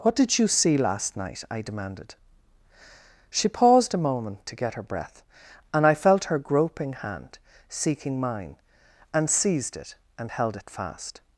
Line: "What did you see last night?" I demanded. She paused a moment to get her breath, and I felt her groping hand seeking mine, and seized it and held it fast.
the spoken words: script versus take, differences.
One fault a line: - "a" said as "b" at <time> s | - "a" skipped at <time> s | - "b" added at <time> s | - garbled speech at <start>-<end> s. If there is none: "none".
none